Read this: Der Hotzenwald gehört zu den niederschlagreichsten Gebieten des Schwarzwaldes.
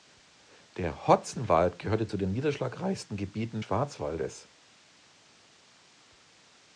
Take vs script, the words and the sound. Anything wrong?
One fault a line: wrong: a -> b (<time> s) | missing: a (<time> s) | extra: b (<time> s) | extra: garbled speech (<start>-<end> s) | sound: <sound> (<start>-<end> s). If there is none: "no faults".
missing: des (3.6 s)